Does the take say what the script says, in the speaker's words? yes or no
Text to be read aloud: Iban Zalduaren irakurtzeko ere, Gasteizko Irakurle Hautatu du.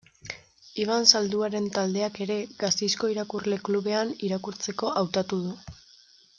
no